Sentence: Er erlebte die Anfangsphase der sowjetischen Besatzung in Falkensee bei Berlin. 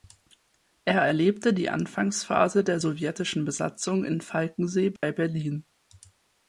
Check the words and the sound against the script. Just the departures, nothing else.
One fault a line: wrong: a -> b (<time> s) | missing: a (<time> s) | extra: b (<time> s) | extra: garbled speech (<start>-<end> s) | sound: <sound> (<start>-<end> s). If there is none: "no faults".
sound: dropout (5.0-5.0 s)